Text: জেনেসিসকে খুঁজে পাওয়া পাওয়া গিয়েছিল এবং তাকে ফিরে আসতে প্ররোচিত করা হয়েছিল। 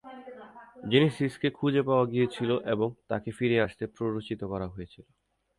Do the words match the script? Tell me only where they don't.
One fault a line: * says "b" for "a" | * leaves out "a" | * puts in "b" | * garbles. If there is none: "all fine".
* leaves out "পাওয়া"